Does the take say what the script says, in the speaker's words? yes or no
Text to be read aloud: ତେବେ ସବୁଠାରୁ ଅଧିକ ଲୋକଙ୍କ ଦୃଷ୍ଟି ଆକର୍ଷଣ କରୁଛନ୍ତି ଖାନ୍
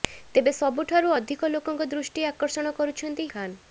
yes